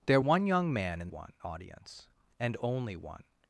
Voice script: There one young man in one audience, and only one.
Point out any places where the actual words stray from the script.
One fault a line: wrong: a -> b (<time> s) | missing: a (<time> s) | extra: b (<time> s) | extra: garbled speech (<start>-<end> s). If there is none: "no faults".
no faults